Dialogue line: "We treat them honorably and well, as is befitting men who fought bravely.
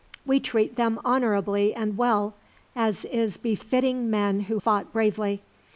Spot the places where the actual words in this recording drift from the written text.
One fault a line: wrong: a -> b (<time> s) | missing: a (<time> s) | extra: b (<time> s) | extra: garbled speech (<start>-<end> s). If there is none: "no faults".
no faults